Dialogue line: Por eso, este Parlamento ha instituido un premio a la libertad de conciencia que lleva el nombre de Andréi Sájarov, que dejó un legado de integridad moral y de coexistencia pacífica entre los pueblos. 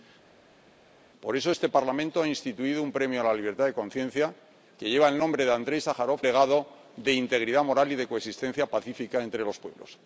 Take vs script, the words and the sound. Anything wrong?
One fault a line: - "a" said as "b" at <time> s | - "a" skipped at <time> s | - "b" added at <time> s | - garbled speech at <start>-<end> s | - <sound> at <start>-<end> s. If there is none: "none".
- "que dejó un" skipped at 6.2 s